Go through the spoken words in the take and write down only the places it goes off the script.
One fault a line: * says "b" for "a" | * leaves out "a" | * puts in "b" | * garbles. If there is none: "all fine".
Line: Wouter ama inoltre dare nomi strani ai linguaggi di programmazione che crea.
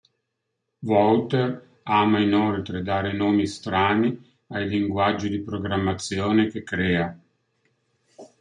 all fine